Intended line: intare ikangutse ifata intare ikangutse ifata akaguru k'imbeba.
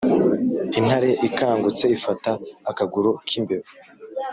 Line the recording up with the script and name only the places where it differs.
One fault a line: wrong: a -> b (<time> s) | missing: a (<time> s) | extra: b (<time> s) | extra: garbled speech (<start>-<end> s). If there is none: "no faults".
missing: intare ikangutse ifata (2.3 s)